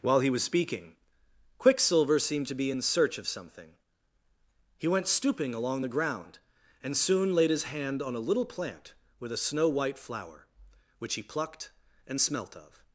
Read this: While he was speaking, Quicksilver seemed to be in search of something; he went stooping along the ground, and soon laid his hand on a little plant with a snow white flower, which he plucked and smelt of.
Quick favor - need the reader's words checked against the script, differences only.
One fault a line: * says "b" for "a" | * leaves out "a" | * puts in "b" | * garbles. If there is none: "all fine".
all fine